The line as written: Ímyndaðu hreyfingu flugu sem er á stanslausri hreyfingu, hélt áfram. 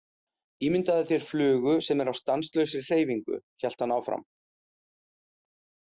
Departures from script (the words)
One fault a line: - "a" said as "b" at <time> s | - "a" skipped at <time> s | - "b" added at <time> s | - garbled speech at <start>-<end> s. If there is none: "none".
- "hreyfingu" said as "þér" at 1.1 s
- "hann" added at 3.9 s